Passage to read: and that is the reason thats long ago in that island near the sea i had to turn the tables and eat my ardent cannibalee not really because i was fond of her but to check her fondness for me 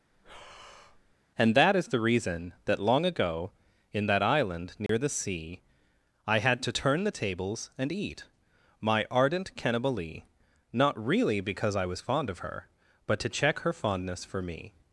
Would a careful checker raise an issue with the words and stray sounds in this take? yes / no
yes